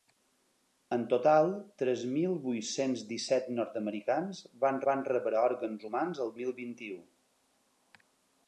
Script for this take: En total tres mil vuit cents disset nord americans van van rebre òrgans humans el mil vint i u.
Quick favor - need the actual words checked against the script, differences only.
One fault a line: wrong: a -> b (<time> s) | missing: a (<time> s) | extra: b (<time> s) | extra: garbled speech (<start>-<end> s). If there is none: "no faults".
no faults